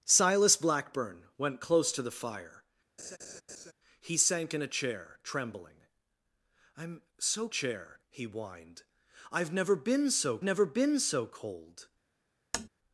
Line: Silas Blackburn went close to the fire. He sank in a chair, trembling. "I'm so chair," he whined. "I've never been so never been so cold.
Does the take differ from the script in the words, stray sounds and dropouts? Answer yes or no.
yes